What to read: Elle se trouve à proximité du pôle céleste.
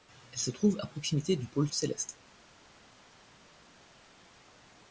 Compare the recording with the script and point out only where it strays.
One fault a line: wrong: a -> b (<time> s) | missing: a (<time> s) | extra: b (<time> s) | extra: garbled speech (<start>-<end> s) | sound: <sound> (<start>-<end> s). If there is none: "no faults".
no faults